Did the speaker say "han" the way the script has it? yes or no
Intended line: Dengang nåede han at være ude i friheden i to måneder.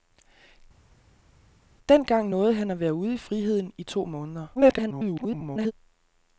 yes